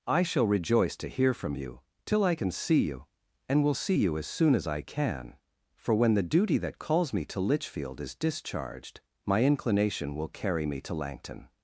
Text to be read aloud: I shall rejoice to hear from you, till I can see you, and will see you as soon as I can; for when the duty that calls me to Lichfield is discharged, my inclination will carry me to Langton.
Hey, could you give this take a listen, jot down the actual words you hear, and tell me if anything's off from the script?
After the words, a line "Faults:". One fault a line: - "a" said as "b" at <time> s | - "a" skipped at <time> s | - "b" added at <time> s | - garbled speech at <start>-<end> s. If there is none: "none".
I shall rejoice to hear from you, till I can see you, and will see you as soon as I can; for when the duty that calls me to Lichfield is discharged, my inclination will carry me to Langton.
Faults:
none